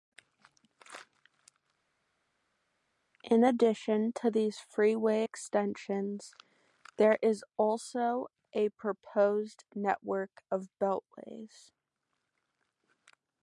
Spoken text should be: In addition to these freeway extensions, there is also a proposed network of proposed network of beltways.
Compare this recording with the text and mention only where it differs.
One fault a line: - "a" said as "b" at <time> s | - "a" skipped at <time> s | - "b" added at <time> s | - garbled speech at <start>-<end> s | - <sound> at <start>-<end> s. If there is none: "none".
- "proposed network of" skipped at 10.7 s